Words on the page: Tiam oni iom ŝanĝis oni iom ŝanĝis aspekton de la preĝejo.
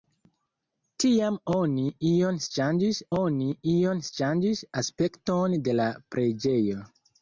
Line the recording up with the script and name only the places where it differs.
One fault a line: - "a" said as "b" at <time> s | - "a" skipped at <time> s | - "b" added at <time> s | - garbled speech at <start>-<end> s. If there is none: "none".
none